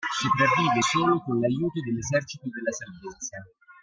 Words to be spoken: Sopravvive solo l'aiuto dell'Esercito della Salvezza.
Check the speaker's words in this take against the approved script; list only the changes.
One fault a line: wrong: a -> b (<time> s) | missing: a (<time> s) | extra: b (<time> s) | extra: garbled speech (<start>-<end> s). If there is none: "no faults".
extra: con (1.2 s)